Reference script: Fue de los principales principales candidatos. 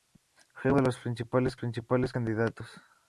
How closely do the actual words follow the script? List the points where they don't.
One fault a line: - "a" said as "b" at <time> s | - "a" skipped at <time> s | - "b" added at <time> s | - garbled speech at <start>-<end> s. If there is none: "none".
none